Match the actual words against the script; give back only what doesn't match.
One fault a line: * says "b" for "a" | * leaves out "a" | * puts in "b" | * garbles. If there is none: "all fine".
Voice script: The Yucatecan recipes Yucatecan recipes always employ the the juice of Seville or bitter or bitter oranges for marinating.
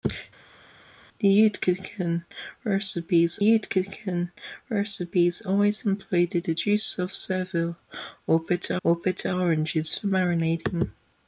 all fine